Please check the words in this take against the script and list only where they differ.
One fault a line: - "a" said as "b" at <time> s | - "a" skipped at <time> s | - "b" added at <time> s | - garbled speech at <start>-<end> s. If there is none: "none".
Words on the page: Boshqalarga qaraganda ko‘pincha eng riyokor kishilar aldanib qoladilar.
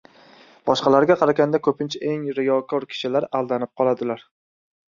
none